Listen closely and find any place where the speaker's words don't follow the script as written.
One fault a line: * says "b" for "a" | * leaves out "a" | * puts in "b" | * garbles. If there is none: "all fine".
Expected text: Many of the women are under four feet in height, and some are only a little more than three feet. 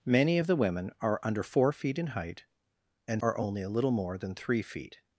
* leaves out "some"